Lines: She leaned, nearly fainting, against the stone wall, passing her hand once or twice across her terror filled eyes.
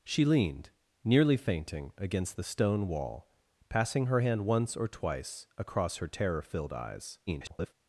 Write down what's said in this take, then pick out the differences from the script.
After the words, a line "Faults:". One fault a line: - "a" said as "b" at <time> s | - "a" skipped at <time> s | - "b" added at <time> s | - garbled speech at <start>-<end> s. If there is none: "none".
She leaned, nearly fainting, against the stone wall, passing her hand once or twice across her terror filled eyes. [garbled]
Faults:
- garbled speech at 7.3-7.7 s